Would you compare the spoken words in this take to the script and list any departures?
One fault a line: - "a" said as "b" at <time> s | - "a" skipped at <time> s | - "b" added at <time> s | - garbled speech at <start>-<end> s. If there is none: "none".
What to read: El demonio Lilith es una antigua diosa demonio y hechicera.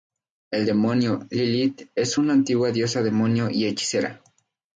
none